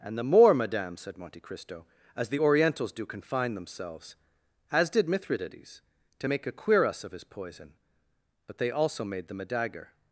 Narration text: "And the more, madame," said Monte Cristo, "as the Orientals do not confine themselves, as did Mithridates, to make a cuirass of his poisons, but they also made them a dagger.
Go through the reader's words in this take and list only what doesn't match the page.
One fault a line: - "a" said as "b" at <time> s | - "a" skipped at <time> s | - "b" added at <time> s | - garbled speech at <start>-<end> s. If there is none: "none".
- "not" skipped at 3.1 s
- "poisons" said as "poison" at 7.2 s